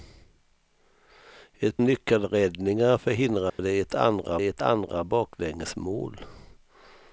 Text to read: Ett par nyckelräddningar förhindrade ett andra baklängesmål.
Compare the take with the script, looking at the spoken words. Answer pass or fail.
fail